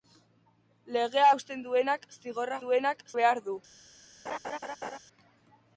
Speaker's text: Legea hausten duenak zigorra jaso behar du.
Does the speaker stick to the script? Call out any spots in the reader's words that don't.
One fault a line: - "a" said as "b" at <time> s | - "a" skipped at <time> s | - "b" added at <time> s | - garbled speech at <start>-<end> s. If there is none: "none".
- "jaso" said as "duenak" at 2.6 s